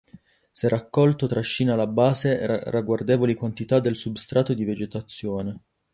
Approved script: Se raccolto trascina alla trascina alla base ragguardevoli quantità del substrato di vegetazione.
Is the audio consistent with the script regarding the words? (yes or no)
no